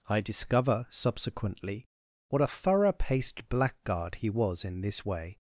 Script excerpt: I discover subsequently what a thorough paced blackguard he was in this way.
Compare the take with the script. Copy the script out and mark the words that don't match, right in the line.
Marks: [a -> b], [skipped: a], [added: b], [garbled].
I discover subsequently what a thorough paced blackguard he was in this way.